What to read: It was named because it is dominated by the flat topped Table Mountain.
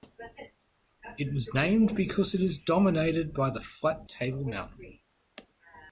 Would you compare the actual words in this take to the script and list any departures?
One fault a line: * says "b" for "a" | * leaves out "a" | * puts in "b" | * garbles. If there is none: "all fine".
* leaves out "topped"